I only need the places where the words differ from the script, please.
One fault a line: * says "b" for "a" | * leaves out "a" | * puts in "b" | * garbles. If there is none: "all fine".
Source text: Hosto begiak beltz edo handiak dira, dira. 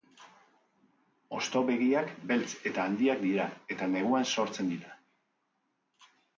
* says "eta" for "edo"
* puts in "eta neguan sortzen"